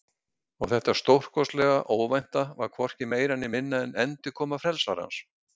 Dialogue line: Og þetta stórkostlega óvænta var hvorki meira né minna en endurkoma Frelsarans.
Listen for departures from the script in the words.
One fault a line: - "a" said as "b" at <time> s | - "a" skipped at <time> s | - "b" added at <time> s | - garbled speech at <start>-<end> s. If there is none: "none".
none